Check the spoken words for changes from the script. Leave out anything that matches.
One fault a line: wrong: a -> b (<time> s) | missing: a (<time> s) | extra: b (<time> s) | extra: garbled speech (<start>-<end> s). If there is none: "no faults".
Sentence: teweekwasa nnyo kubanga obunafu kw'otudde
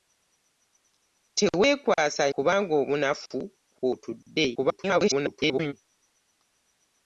missing: nnyo (2.2 s)
extra: garbled speech (4.6-5.7 s)